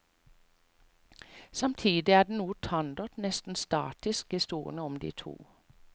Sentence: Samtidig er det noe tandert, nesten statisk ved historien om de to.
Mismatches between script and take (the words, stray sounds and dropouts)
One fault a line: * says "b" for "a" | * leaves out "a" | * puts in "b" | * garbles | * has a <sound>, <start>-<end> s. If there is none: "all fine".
* leaves out "ved"